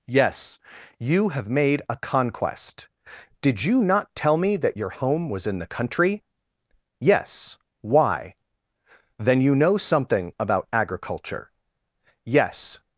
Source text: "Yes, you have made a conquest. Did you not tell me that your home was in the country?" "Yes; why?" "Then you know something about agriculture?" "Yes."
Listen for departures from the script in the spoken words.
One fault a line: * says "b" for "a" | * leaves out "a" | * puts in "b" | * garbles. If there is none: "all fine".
all fine